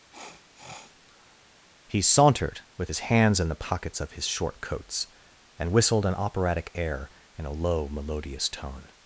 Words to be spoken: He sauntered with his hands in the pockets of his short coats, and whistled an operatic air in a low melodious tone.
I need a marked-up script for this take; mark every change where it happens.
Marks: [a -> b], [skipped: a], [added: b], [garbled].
He sauntered with his hands in the pockets of his short coats, and whistled an operatic air in a low melodious tone.